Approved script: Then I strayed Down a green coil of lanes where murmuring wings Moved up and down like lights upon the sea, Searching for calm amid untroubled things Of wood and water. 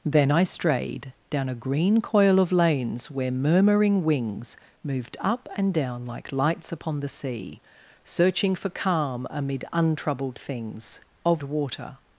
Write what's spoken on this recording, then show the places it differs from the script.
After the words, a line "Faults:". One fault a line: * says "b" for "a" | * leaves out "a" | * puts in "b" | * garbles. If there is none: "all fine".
Then I strayed Down a green coil of lanes where murmuring wings Moved up and down like lights upon the sea, Searching for calm amid untroubled things Of water.
Faults:
* leaves out "wood and"